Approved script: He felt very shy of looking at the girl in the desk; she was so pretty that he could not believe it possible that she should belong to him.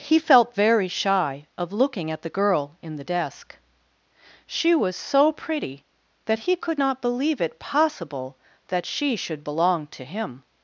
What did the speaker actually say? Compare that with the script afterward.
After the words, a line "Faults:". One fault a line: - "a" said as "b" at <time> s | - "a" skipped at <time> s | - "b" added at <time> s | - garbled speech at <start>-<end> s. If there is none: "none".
He felt very shy of looking at the girl in the desk; she was so pretty that he could not believe it possible that she should belong to him.
Faults:
none